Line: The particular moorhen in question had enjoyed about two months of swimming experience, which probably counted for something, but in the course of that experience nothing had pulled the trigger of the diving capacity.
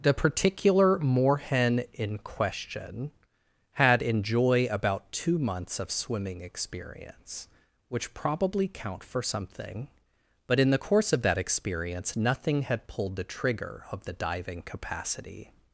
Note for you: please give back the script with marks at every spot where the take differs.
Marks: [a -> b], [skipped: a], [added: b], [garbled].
The particular moorhen in question had [enjoyed -> enjoy] about two months of swimming experience, which probably [counted -> count] for something, but in the course of that experience nothing had pulled the trigger of the diving capacity.